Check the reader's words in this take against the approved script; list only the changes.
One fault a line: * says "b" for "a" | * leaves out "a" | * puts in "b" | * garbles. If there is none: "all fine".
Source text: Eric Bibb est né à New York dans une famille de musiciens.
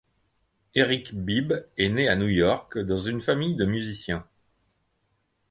all fine